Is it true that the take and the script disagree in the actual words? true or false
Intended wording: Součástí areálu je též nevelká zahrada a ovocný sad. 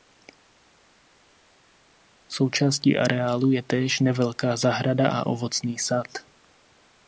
false